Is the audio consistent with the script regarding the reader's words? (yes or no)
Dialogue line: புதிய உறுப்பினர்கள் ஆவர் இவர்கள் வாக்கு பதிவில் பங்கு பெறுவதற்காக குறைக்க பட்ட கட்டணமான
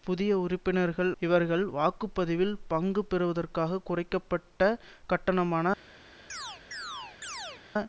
no